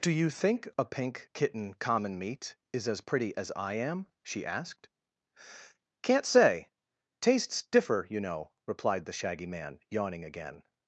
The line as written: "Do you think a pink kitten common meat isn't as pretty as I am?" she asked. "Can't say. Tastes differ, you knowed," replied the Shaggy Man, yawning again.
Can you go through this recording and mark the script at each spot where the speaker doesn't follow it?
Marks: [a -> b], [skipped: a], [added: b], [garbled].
"Do you think a pink kitten common meat [isn't -> is] as pretty as I am?" she asked. "Can't say. Tastes differ, you [knowed," -> know] replied the Shaggy Man, yawning again.